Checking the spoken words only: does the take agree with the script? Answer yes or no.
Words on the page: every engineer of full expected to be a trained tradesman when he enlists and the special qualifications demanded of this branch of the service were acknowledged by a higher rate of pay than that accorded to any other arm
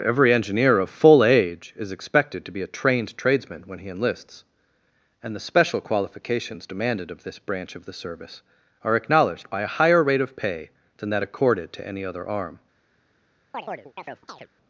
no